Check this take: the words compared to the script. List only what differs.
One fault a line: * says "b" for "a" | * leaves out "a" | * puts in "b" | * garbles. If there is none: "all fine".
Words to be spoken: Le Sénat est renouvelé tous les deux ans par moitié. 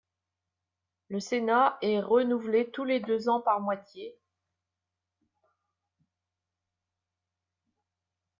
all fine